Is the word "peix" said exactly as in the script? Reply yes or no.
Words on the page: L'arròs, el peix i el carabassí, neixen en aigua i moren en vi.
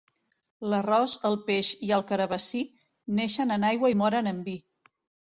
yes